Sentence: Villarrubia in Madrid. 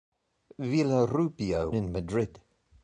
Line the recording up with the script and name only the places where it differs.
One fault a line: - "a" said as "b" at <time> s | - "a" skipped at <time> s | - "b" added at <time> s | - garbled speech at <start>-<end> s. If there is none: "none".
none